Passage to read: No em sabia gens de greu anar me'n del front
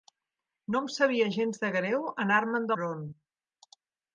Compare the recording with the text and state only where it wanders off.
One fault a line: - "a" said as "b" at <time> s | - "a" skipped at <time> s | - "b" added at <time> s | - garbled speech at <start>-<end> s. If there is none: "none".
- "del" skipped at 2.7 s